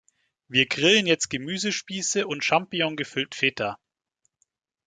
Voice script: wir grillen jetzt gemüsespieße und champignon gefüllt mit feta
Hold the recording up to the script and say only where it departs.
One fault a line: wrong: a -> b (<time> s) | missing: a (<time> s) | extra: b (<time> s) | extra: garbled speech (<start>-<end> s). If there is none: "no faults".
missing: mit (3.3 s)